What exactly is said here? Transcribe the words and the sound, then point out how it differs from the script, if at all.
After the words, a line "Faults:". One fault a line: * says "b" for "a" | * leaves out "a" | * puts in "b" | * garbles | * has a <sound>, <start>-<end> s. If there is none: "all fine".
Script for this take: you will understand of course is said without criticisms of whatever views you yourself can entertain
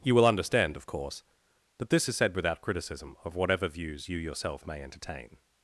you will understand of course that this is said without criticism of whatever views you yourself may entertain
Faults:
* puts in "that this"
* says "criticism" for "criticisms"
* says "may" for "can"